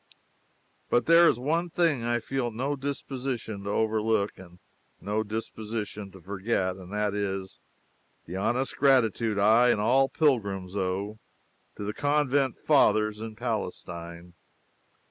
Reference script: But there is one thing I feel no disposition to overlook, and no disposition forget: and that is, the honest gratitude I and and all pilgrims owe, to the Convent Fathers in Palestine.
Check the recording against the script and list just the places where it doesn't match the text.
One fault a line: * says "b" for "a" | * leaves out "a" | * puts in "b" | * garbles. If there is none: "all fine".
* puts in "to"
* leaves out "and"